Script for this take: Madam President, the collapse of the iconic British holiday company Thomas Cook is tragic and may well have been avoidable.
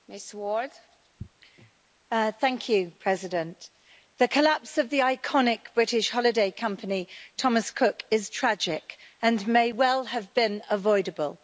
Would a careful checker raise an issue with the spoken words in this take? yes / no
no